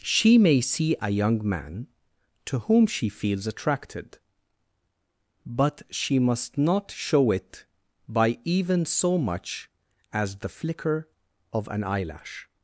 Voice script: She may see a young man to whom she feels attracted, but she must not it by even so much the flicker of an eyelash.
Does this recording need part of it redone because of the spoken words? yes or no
yes